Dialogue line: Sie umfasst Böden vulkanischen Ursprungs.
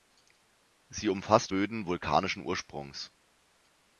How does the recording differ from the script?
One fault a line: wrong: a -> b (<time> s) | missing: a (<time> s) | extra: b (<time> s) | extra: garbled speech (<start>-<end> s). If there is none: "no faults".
no faults